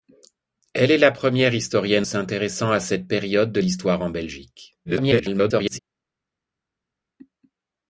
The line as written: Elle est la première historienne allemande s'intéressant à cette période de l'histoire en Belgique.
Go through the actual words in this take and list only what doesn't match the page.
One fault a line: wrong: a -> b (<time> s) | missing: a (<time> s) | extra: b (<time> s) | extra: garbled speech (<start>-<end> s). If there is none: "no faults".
missing: allemande (2.1 s)
extra: garbled speech (4.8-5.8 s)